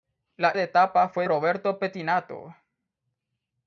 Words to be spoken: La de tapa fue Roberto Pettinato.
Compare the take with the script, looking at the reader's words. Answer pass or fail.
pass